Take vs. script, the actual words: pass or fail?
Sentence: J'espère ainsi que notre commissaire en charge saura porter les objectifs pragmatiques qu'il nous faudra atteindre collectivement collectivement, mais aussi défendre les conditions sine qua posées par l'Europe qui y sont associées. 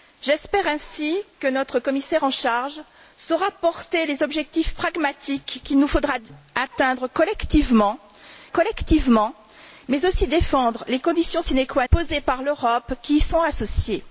pass